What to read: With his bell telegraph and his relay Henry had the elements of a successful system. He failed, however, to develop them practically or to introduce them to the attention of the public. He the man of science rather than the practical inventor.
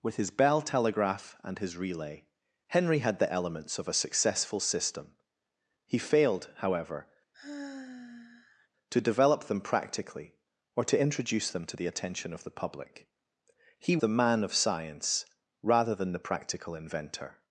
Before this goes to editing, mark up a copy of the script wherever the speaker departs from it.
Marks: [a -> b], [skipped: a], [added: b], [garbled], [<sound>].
With his bell telegraph and his relay Henry had the elements of a successful system. He failed, however, [sigh] to develop them practically or to introduce them to the attention of the public. He the man of science rather than the practical inventor.